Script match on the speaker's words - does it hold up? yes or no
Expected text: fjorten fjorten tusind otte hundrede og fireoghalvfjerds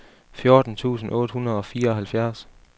no